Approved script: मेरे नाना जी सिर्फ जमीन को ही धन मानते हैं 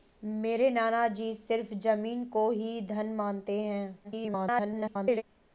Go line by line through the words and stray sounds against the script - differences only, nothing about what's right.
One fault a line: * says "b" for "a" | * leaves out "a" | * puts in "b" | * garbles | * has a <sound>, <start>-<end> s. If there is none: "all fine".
* garbles